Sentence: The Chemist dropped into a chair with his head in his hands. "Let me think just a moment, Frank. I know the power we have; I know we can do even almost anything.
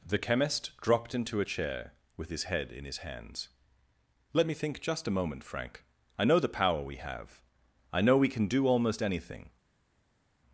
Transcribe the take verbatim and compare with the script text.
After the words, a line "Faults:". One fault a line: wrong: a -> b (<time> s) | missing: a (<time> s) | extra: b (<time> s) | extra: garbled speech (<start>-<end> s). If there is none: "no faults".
The Chemist dropped into a chair with his head in his hands. "Let me think just a moment, Frank. I know the power we have; I know we can do almost anything.
Faults:
missing: even (8.7 s)